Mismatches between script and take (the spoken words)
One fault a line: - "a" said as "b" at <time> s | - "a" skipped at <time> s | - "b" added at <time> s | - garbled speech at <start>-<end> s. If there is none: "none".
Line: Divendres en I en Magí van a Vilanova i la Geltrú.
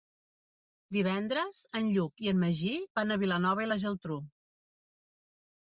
- "Lluc" added at 2.0 s